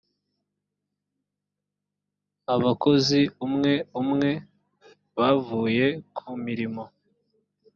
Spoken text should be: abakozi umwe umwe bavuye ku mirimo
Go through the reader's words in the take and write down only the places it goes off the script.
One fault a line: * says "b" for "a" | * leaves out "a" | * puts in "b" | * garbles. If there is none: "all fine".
all fine